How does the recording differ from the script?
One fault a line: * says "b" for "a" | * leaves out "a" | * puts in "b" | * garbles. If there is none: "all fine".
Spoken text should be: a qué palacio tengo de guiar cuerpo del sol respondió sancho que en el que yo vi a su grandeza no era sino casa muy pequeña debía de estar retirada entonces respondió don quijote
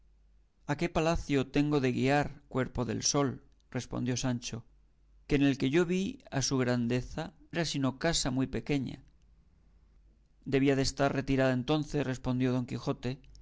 * leaves out "no"